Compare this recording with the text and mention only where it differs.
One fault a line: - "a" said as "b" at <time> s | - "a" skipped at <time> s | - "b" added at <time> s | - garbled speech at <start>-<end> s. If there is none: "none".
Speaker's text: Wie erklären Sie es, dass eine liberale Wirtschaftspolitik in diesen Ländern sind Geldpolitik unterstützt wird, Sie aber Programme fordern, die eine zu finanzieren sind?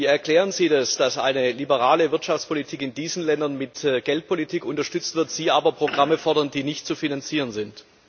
- "sind" said as "mit" at 3.6 s
- "eine" said as "nicht" at 6.6 s